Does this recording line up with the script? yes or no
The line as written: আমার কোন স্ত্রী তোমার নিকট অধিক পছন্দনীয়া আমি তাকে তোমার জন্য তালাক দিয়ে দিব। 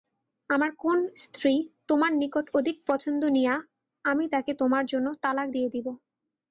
yes